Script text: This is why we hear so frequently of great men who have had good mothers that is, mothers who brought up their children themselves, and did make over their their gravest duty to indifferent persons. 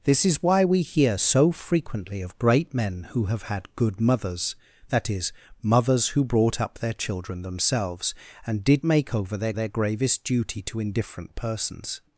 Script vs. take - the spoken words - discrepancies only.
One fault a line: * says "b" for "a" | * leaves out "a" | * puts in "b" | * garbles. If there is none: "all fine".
all fine